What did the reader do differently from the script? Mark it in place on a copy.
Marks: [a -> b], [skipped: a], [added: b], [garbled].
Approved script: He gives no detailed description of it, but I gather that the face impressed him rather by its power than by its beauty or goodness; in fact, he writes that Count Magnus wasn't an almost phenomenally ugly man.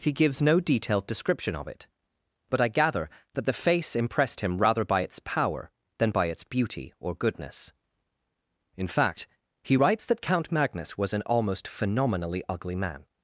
He gives no detailed description of it, but I gather that the face impressed him rather by its power than by its beauty or goodness; in fact, he writes that Count Magnus [wasn't -> was] an almost phenomenally ugly man.